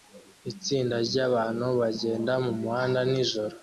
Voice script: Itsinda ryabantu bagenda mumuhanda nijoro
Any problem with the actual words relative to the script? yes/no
no